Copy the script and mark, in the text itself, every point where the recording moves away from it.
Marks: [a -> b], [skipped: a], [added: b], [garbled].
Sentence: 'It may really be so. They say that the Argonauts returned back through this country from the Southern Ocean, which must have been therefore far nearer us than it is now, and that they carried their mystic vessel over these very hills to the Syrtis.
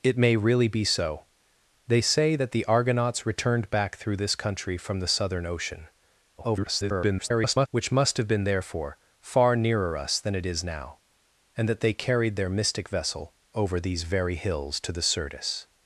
'It may really be so. They say that the Argonauts returned back through this country from the Southern Ocean, [garbled] which must have been therefore far nearer us than it is now, and that they carried their mystic vessel over these very hills to the Syrtis.